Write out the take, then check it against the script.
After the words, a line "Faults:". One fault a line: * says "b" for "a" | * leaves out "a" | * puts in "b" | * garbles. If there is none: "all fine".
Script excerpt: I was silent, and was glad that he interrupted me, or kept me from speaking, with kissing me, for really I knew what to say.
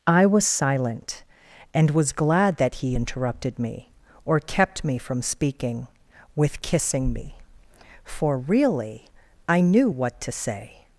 I was silent, and was glad that he interrupted me, or kept me from speaking, with kissing me, for really I knew what to say.
Faults:
all fine